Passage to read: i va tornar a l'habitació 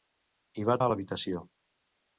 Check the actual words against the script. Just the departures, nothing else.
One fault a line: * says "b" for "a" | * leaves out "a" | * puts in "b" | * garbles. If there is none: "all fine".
* leaves out "tornar"